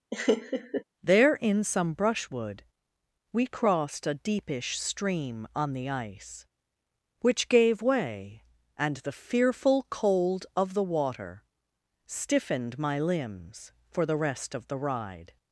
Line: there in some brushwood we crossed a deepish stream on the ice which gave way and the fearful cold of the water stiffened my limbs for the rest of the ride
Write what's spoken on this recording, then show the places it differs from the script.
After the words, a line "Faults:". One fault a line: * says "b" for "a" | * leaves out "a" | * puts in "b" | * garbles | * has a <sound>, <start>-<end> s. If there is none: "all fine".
there in some brushwood we crossed a deepish stream on the ice which gave way and the fearful cold of the water stiffened my limbs for the rest of the ride
Faults:
* has a laugh, 0.1-0.8 s